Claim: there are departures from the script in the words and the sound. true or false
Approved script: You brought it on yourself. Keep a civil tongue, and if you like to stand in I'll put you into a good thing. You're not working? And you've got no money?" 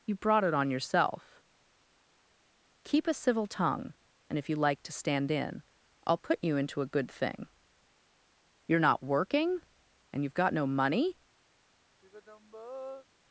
true